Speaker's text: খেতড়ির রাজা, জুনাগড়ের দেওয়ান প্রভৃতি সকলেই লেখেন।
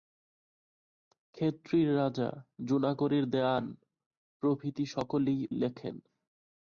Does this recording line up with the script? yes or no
yes